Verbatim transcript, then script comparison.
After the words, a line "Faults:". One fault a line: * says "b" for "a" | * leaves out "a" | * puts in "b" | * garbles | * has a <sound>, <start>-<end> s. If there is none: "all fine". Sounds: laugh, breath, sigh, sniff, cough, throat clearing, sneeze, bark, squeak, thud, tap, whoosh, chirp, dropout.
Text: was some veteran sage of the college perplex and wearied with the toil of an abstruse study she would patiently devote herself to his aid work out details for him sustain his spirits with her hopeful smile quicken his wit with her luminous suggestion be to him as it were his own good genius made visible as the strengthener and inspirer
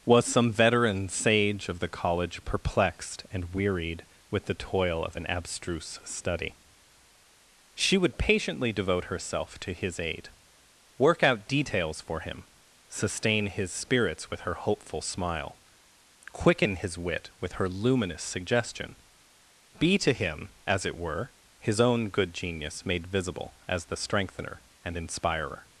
was some veteran sage of the college perplexed and wearied with the toil of an abstruse study she would patiently devote herself to his aid work out details for him sustain his spirits with her hopeful smile quicken his wit with her luminous suggestion be to him as it were his own good genius made visible as the strengthener and inspirer
Faults:
* says "perplexed" for "perplex"